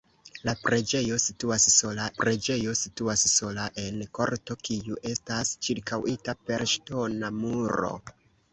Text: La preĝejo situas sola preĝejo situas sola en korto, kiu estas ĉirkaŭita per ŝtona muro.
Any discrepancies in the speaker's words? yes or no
no